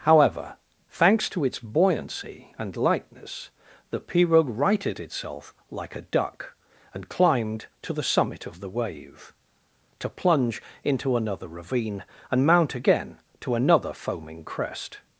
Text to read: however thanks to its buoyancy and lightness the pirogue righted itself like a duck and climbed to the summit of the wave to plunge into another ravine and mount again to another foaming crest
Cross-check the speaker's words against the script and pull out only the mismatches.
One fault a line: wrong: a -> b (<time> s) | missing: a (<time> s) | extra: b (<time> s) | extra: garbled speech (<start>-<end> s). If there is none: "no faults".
no faults